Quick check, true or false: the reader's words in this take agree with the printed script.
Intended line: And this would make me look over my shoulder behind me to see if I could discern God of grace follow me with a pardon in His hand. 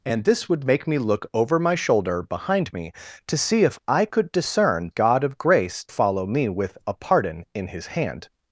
true